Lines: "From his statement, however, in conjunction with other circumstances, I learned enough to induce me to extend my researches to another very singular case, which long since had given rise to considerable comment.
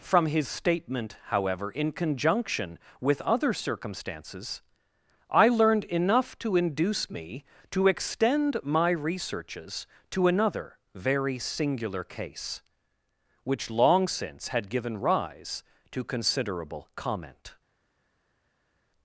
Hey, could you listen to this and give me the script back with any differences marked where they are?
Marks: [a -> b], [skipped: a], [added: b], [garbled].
"From his statement, however, in conjunction with other circumstances, I learned enough to induce me to extend my researches to another very singular case, which long since had given rise to considerable comment.